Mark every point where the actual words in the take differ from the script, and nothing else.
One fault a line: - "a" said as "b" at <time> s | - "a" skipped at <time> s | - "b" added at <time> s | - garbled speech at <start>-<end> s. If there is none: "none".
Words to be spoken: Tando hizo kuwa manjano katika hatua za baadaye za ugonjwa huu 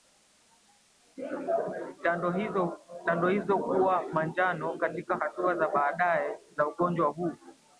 none